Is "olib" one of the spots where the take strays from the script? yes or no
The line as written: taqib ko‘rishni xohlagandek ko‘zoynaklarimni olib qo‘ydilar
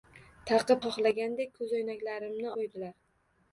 yes